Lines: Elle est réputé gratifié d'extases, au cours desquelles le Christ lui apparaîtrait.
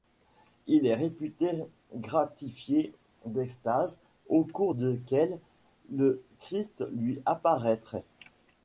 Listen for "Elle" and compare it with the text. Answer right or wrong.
wrong